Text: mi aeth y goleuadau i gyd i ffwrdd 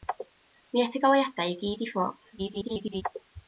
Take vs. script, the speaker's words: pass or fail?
fail